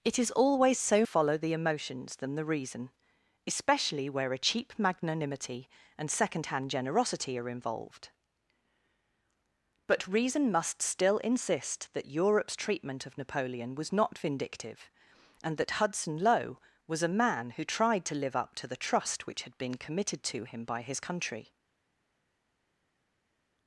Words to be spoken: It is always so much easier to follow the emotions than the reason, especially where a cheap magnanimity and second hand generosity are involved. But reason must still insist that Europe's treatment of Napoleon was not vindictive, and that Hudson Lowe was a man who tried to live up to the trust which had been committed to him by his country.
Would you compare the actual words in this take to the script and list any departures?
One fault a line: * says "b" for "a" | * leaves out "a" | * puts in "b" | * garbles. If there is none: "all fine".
* leaves out "much easier to"